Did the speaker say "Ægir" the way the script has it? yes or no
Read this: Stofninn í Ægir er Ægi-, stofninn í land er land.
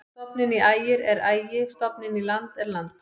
yes